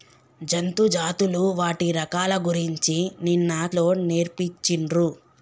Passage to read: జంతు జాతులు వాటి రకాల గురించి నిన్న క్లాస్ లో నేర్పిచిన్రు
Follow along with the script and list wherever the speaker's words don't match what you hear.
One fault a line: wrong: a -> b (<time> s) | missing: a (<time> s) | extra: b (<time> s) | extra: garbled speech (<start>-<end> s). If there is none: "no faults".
missing: క్లాస్ (3.5 s)